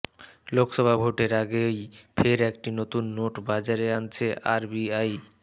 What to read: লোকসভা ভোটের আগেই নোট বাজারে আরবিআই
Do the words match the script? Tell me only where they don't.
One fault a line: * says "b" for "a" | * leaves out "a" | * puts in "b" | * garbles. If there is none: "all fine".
* puts in "ফের একটি নতুন"
* puts in "আনছে"